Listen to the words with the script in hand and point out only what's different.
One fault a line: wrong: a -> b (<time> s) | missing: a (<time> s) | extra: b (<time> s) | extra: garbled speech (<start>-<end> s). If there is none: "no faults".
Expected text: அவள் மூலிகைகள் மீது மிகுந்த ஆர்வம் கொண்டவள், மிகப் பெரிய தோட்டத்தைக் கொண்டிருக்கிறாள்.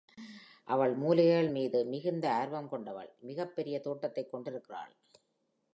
no faults